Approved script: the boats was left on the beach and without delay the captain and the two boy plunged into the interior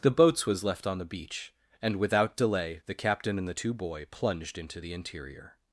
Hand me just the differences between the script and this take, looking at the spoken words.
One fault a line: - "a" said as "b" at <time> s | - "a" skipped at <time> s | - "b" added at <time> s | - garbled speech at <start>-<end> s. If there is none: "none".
none